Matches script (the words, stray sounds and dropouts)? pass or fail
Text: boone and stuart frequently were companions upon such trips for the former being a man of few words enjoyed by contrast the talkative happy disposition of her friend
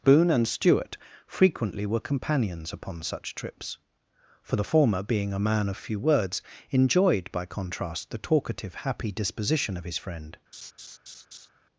fail